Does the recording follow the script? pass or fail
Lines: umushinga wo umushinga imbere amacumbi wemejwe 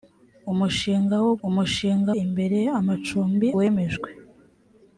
pass